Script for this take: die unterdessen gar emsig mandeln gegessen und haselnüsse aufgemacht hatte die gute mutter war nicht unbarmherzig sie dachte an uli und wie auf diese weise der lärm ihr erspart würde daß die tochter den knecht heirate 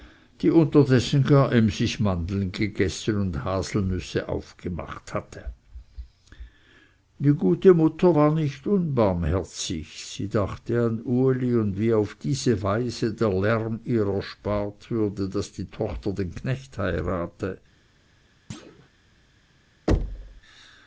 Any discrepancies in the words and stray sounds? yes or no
yes